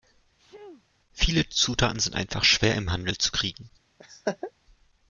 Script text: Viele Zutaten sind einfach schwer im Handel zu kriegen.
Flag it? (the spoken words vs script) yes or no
no